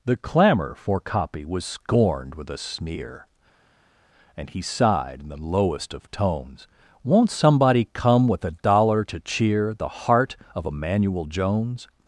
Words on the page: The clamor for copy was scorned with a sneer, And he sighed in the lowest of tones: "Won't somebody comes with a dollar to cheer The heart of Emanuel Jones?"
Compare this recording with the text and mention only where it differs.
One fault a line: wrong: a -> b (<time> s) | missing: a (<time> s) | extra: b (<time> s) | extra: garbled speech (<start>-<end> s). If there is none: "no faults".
wrong: comes -> come (7.9 s)